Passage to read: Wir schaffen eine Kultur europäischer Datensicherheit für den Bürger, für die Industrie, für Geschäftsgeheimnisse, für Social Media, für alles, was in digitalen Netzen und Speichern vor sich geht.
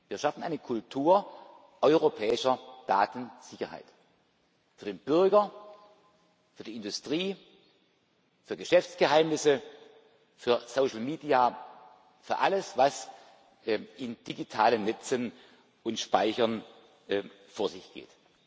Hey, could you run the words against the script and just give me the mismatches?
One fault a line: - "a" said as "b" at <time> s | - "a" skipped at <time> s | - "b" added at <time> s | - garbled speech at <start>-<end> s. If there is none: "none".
none